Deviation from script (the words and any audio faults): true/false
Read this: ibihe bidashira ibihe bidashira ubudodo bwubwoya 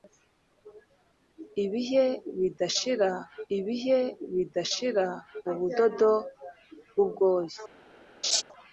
true